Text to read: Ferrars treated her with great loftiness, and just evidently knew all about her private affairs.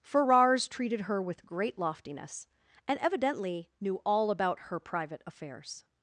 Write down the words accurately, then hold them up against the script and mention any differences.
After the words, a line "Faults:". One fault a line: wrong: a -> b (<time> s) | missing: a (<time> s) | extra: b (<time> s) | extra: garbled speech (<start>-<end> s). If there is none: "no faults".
Ferrars treated her with great loftiness, and evidently knew all about her private affairs.
Faults:
missing: just (3.0 s)